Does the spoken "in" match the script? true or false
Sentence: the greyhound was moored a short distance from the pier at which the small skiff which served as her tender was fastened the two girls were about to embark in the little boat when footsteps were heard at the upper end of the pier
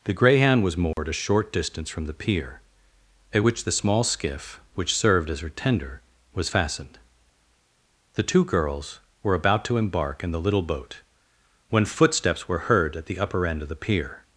true